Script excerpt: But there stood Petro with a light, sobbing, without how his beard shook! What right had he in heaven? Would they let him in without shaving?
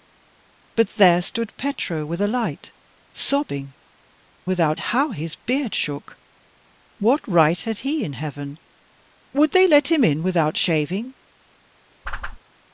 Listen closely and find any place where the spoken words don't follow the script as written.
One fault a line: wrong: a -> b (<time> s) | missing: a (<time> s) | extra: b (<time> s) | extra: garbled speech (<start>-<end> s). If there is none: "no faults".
no faults